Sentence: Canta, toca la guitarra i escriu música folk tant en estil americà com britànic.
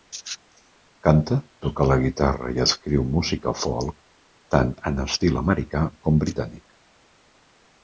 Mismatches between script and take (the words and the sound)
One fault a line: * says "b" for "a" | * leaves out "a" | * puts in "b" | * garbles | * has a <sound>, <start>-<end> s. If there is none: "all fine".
all fine